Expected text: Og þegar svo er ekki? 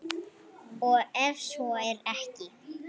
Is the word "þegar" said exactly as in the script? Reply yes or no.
no